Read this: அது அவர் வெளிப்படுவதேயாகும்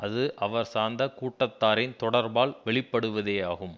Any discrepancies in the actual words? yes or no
yes